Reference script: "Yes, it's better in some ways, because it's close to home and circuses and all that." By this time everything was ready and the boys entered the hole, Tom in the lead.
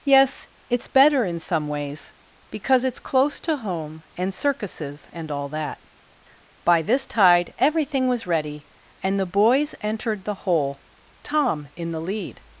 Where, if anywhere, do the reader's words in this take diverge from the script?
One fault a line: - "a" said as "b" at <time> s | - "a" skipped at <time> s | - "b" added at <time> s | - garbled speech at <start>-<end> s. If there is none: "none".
- "time" said as "tide" at 7.0 s